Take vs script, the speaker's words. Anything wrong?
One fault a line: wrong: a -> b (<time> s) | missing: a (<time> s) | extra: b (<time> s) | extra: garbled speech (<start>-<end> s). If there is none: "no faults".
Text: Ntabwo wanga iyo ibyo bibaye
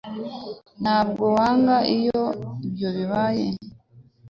no faults